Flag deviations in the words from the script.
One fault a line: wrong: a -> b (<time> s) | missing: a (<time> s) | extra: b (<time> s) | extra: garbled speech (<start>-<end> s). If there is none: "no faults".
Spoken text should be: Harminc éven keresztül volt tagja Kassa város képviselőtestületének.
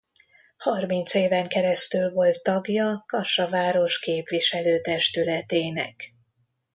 no faults